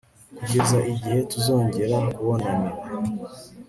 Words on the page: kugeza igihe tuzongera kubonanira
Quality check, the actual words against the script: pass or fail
pass